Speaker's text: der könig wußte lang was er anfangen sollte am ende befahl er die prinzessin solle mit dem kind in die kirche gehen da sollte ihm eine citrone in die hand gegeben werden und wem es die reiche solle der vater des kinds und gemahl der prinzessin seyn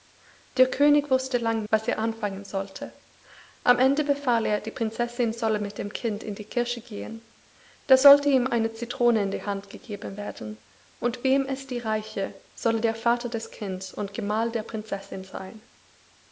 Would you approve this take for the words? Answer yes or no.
yes